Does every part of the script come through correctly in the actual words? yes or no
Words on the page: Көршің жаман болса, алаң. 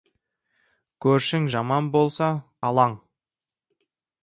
yes